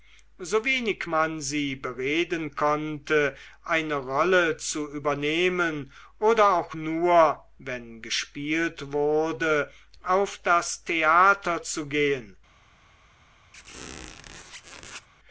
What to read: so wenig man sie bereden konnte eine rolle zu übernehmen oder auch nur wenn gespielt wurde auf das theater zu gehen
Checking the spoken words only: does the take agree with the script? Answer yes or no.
yes